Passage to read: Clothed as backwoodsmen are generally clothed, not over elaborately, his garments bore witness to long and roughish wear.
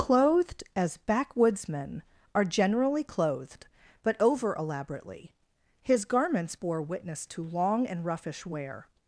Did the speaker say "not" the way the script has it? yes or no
no